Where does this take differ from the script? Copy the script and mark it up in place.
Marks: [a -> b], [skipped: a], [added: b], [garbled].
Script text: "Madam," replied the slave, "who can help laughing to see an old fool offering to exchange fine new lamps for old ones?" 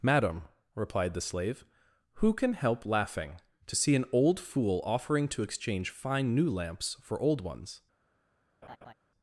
"Madam," replied the slave, "who can help laughing to see an old fool offering to exchange fine new lamps for old ones?"